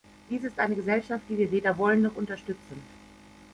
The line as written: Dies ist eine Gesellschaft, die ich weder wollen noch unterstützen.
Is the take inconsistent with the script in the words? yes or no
yes